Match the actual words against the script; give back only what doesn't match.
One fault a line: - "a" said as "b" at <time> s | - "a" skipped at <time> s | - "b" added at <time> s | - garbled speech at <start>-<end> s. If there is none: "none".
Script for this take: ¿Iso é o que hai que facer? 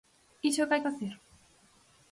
- "que" skipped at 0.8 s